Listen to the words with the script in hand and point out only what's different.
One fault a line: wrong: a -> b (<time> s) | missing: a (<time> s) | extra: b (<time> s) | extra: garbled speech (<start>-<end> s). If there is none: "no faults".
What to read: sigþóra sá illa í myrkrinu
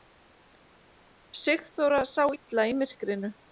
no faults